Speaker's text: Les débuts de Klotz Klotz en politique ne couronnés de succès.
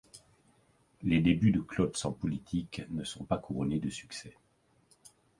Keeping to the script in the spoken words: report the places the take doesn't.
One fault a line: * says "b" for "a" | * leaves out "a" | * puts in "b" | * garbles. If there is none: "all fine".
* leaves out "Klotz"
* puts in "sont pas"